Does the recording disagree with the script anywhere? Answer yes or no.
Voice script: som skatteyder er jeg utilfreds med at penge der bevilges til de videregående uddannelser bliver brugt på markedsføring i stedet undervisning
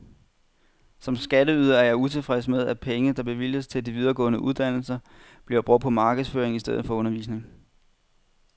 yes